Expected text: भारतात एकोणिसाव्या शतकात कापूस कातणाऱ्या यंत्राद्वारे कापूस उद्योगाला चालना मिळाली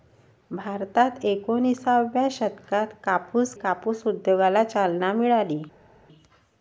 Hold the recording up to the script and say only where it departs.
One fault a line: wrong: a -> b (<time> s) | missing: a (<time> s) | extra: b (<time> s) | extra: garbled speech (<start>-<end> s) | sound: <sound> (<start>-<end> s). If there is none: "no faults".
missing: कातणाऱ्या यंत्राद्वारे (3.5 s)